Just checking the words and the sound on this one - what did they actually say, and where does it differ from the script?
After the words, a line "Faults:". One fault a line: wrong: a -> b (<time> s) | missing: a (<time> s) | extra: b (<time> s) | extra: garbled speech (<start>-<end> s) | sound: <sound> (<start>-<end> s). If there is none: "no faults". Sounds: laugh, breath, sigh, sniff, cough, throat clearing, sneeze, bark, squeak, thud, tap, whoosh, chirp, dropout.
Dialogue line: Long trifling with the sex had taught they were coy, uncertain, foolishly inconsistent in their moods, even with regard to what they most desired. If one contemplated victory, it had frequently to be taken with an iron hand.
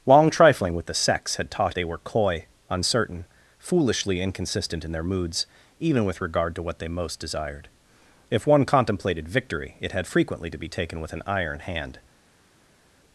Long trifling with the sex had taught they were coy, uncertain, foolishly inconsistent in their moods, even with regard to what they most desired. If one contemplated victory, it had frequently to be taken with an iron hand.
Faults:
no faults